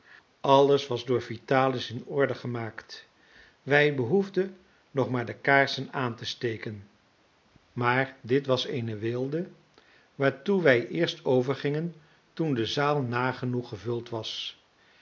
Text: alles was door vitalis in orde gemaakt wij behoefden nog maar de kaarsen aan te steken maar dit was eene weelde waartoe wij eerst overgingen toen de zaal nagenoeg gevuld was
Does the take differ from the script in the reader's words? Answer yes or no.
no